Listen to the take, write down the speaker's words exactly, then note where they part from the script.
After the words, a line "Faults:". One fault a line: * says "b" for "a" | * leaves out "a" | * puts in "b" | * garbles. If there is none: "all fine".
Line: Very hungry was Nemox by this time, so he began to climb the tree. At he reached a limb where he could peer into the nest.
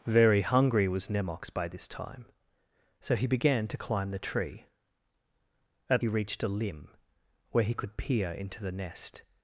Very hungry was Nemox by this time, so he began to climb the tree. At he reached a limb where he could peer into the nest.
Faults:
all fine